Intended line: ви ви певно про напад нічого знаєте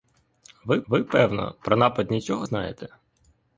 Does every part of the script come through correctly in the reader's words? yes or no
yes